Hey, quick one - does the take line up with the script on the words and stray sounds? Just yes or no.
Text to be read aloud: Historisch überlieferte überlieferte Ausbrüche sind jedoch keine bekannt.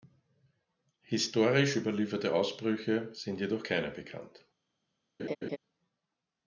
no